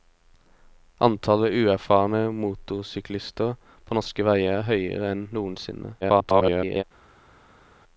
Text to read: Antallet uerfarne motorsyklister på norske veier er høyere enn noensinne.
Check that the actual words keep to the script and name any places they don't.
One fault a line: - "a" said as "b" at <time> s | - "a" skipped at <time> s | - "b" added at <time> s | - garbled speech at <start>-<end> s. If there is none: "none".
- garbled speech at 6.0-6.8 s